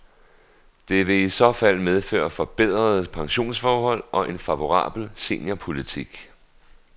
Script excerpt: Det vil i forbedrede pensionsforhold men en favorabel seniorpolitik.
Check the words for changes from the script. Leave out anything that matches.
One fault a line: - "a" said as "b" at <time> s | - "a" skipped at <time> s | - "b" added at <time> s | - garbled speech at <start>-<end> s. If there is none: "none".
- "så fald medføre" added at 1.3 s
- "men" said as "og" at 4.1 s